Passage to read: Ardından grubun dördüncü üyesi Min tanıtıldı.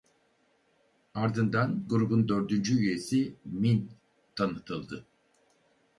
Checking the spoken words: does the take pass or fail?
pass